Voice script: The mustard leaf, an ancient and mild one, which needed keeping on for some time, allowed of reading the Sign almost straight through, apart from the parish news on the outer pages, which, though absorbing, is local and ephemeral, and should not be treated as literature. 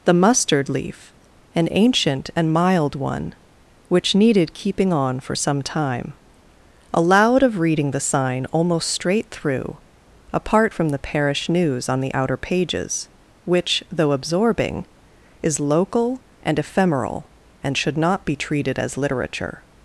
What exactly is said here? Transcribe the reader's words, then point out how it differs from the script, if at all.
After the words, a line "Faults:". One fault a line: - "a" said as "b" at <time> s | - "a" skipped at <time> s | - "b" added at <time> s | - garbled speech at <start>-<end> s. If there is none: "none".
The mustard leaf, an ancient and mild one, which needed keeping on for some time, allowed of reading the Sign almost straight through, apart from the parish news on the outer pages, which, though absorbing, is local and ephemeral, and should not be treated as literature.
Faults:
none